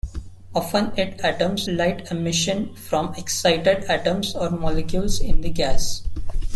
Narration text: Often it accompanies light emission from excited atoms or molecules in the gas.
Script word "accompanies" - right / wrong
wrong